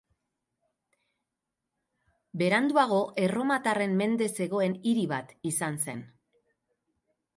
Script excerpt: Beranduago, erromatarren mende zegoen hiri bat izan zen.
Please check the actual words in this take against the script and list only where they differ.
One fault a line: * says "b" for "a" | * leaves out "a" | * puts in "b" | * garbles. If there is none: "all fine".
all fine